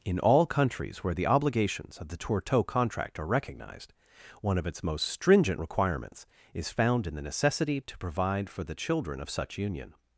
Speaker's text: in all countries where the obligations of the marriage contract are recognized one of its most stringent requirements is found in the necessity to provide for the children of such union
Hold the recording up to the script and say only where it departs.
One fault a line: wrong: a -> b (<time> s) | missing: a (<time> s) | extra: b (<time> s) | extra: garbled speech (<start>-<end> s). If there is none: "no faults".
wrong: marriage -> tourteau (2.2 s)